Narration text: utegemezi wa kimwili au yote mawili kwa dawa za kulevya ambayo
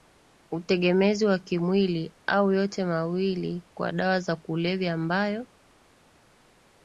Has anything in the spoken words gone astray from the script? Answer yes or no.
no